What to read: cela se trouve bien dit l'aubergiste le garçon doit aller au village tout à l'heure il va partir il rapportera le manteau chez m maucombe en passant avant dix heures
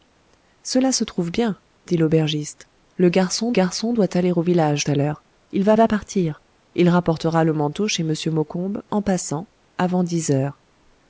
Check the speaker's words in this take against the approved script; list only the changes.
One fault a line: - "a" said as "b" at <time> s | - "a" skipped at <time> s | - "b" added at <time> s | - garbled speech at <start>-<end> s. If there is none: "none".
- "garçon" added at 3.5 s
- "tout" skipped at 4.9 s
- "va" added at 5.7 s